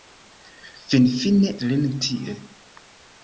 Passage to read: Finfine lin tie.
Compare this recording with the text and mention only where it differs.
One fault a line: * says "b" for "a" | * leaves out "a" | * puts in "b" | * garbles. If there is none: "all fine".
all fine